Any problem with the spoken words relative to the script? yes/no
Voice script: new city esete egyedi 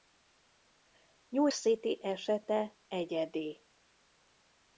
no